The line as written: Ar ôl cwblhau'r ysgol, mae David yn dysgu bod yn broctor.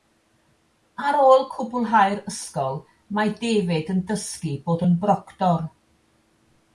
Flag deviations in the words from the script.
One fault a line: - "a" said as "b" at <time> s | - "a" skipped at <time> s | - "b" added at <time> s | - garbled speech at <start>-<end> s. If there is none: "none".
none